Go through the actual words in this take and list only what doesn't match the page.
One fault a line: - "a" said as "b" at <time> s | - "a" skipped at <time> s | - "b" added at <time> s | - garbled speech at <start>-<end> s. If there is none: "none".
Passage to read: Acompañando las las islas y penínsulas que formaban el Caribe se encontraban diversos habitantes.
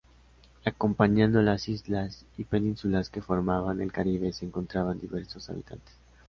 - "las" skipped at 1.7 s